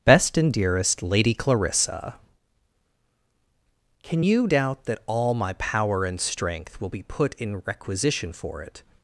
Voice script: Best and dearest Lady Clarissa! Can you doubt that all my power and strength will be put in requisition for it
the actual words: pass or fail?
pass